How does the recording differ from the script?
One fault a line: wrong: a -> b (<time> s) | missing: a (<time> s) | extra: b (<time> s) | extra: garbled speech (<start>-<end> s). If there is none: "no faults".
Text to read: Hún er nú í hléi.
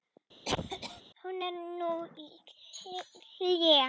no faults